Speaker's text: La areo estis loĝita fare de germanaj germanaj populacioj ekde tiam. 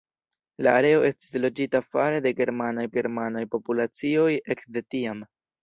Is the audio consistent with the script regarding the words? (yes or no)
yes